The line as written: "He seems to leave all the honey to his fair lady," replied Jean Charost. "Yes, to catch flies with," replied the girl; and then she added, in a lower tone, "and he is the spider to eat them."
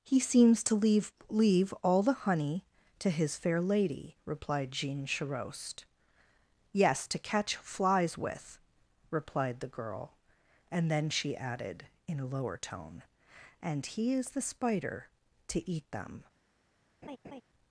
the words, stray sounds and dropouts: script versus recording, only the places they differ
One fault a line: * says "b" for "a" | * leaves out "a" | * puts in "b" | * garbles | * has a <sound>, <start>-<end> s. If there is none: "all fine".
* puts in "leave"
* has a laugh, 17.0-17.4 s